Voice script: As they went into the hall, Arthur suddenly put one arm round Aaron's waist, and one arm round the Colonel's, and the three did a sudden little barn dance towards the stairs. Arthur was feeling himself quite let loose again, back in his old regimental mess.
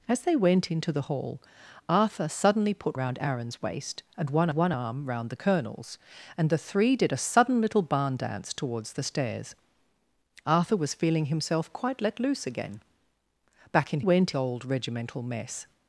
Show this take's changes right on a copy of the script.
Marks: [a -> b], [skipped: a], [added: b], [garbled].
As they went into the hall, Arthur suddenly put [skipped: one arm] round Aaron's waist, and one [added: one] arm round the Colonel's, and the three did a sudden little barn dance towards the stairs. Arthur was feeling himself quite let loose again, back in [his -> went] old regimental mess.